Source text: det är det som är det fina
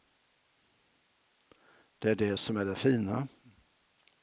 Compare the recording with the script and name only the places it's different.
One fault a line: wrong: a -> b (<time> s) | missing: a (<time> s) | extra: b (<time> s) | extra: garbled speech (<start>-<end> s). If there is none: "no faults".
no faults